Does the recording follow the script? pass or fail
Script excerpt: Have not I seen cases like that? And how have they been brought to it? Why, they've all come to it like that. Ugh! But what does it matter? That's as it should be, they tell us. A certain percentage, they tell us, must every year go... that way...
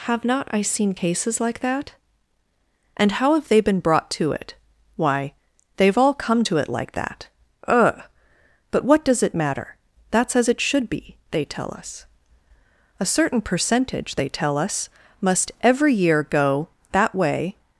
pass